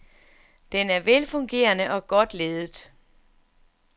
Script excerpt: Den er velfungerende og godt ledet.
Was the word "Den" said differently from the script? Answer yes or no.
no